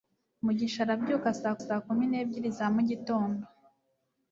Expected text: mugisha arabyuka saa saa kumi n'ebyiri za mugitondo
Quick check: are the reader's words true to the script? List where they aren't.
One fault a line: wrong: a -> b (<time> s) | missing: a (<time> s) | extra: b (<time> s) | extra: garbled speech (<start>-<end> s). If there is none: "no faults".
no faults